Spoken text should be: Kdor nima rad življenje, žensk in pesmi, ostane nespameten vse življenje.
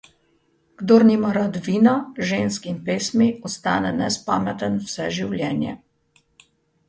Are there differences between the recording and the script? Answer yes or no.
yes